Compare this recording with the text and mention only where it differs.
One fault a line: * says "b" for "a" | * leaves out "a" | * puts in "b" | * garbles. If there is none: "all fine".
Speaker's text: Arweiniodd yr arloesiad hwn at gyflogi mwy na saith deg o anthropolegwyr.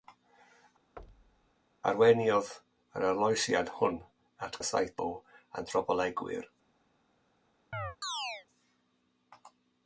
* leaves out "gyflogi mwy"
* leaves out "deg"